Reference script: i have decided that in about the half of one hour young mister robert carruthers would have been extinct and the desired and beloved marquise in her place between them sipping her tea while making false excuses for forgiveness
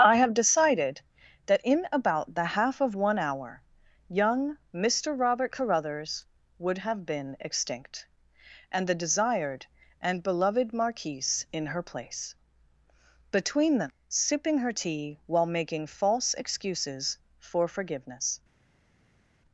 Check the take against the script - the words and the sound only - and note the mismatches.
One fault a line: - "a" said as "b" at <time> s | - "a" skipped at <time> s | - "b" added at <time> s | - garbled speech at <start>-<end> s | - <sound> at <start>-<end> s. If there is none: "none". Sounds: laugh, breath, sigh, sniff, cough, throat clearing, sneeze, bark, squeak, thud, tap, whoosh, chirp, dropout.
none